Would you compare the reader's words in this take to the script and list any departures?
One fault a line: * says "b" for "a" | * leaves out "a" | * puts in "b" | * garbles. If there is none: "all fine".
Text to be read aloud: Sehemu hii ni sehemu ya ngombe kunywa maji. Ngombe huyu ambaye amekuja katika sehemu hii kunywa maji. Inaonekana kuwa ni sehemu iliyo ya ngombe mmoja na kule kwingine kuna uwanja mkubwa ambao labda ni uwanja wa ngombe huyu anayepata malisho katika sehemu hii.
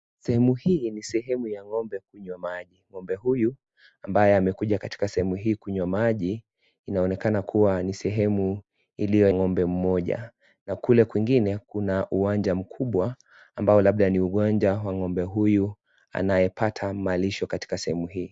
* leaves out "ya"